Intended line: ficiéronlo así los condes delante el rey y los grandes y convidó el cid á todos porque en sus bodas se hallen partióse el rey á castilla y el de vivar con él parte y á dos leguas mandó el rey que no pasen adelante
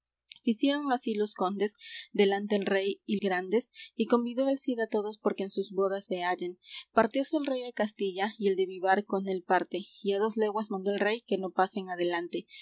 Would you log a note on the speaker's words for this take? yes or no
yes